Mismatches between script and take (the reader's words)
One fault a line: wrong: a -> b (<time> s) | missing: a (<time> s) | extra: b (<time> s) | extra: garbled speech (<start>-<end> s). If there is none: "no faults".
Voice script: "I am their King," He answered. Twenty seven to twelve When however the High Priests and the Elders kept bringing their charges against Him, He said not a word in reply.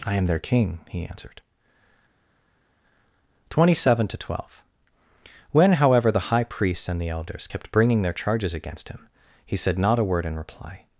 no faults